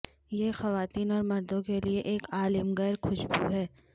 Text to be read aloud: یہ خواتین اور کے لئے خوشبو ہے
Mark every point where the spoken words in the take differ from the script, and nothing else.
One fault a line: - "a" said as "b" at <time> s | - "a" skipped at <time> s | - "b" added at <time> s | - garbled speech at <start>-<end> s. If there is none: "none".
- "مردوں" added at 1.2 s
- "ایک عالمگیر" added at 2.1 s